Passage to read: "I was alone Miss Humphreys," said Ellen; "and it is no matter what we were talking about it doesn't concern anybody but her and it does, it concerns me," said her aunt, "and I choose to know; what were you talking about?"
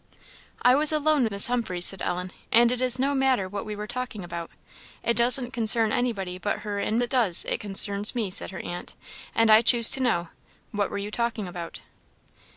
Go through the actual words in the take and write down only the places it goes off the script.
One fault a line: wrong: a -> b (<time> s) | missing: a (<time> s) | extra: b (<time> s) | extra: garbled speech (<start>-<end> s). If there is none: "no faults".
no faults